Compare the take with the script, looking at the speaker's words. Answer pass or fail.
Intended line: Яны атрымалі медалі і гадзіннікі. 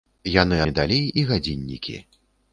fail